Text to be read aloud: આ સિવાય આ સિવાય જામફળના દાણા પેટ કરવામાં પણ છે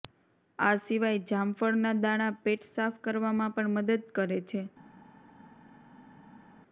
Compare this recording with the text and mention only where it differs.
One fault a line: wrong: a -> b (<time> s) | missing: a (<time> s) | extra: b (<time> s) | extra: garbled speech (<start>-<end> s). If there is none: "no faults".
missing: આ સિવાય (1.2 s)
extra: સાફ (2.7 s)
extra: મદદ કરે (3.8 s)